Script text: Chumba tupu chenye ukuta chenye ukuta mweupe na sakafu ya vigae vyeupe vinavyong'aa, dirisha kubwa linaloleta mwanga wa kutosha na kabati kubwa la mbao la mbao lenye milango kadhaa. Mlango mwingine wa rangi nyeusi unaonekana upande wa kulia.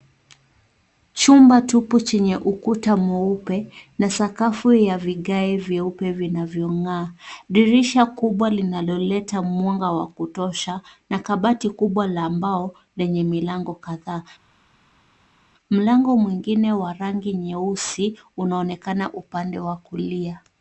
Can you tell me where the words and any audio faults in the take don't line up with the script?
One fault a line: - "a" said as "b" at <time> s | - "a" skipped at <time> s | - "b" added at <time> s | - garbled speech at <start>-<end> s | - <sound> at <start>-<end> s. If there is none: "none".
- "chenye ukuta" skipped at 3.0 s
- "la mbao" skipped at 12.7 s